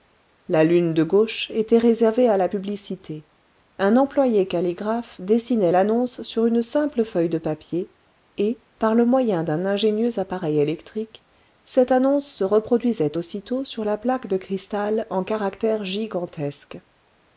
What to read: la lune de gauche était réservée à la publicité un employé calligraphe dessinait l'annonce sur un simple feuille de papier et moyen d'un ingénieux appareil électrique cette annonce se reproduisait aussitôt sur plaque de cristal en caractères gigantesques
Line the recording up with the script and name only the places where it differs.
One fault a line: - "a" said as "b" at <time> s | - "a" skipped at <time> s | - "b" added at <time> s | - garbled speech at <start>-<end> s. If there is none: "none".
- "un" said as "une" at 6.4 s
- "par le" added at 8.8 s
- "la" added at 13.8 s